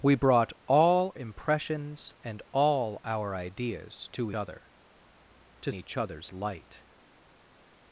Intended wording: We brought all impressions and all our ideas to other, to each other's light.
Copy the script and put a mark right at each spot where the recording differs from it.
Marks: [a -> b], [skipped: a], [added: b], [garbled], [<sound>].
We brought all impressions and all our ideas to other, to each other's light.